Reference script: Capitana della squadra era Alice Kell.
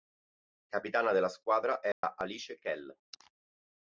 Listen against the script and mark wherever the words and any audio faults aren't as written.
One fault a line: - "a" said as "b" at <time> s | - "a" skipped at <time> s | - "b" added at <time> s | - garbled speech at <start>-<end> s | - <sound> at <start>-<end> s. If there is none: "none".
- dropout at 1.9-2.0 s